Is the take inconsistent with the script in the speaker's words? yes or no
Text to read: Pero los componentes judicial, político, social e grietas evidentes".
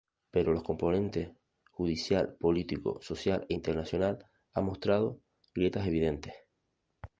yes